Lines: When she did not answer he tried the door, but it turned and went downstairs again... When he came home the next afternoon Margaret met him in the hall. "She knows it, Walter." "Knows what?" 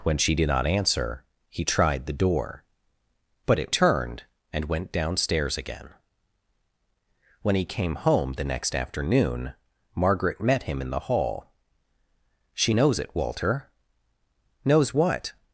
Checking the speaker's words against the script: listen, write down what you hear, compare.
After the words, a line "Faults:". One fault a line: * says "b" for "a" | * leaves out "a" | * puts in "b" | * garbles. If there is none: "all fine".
When she did not answer he tried the door, but it turned and went downstairs again... When he came home the next afternoon Margaret met him in the hall. "She knows it, Walter." "Knows what?"
Faults:
all fine